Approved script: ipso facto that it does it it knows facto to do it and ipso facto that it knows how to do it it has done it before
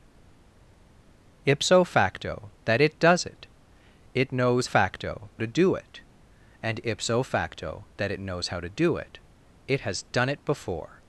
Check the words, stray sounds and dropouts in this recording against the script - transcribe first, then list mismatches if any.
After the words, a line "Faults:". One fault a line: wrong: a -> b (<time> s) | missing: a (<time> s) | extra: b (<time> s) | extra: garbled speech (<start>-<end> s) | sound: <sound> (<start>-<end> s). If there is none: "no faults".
ipso facto that it does it it knows facto to do it and ipso facto that it knows how to do it it has done it before
Faults:
no faults